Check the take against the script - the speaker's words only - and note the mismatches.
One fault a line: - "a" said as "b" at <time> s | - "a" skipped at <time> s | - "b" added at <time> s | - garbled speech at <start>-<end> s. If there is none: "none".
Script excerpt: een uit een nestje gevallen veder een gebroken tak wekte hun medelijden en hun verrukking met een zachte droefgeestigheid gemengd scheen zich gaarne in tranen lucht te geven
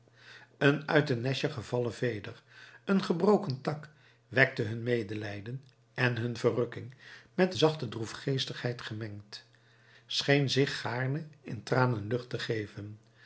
- "een" skipped at 7.5 s